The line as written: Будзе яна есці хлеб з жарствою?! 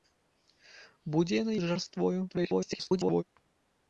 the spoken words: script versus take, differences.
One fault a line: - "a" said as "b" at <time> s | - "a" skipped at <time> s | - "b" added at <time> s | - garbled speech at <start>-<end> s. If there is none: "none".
- "есці хлеб" skipped at 1.5 s
- garbled speech at 2.3-3.2 s